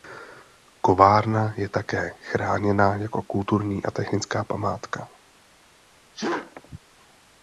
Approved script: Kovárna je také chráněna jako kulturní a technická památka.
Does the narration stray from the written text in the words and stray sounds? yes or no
yes